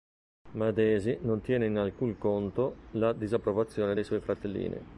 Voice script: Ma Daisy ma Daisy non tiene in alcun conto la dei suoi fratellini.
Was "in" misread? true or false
false